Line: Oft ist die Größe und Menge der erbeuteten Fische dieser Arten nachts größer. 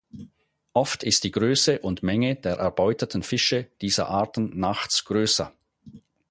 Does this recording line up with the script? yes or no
yes